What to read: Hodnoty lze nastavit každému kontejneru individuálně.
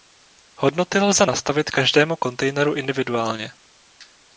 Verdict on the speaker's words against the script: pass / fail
pass